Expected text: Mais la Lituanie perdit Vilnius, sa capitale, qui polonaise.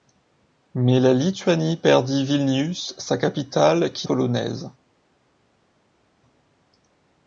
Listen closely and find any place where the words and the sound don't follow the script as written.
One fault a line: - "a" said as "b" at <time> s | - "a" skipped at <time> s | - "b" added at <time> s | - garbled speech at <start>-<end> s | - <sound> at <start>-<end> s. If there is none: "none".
none